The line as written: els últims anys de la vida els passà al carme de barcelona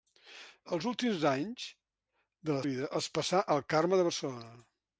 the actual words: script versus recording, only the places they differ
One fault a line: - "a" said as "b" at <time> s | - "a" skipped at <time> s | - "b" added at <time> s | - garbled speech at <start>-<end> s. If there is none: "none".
none